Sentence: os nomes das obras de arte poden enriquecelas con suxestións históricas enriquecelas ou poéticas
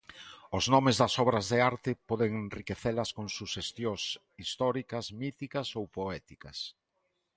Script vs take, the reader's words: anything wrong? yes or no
yes